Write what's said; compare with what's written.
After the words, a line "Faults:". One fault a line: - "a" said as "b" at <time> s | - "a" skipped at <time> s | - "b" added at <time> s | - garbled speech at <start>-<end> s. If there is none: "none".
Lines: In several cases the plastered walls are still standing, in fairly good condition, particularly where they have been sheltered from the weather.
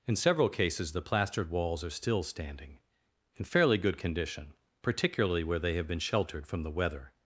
In several cases the plastered walls are still standing, in fairly good condition, particularly where they have been sheltered from the weather.
Faults:
none